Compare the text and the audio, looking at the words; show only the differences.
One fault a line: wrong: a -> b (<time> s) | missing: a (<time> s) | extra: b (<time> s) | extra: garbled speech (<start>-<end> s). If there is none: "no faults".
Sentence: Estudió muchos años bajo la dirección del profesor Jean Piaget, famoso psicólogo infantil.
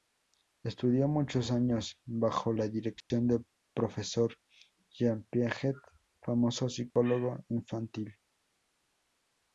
no faults